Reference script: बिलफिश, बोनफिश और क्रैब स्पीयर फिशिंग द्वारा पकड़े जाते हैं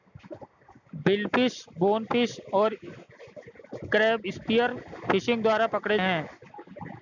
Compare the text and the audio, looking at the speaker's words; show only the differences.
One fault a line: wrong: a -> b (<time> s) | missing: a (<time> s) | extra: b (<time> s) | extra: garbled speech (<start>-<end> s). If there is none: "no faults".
missing: जाते (6.0 s)